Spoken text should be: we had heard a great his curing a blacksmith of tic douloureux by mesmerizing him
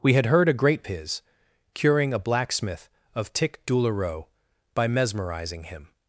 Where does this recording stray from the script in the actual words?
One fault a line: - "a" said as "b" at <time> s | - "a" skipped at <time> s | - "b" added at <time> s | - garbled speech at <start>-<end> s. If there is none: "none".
none